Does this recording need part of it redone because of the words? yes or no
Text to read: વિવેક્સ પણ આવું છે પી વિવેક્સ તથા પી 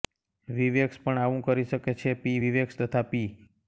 yes